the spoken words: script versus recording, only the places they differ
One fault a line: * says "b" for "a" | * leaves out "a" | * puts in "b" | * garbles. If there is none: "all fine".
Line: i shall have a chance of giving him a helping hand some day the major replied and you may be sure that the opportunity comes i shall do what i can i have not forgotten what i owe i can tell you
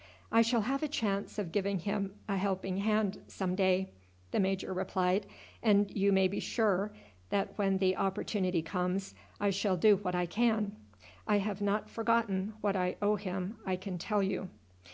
* puts in "when"
* puts in "him"